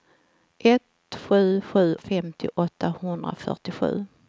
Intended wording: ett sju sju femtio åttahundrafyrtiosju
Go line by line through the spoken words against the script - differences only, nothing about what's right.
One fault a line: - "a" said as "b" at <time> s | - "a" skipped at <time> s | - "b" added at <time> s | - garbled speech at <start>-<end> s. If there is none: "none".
none